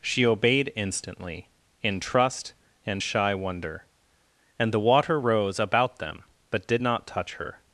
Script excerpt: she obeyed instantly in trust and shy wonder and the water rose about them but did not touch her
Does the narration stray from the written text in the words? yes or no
no